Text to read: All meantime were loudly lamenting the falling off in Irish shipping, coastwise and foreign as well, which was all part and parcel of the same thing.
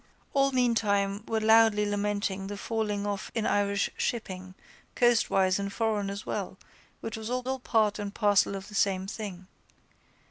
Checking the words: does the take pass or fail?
fail